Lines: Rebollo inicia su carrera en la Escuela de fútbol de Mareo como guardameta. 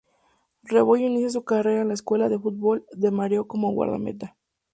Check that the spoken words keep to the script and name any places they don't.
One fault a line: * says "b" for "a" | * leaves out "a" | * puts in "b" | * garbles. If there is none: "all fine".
all fine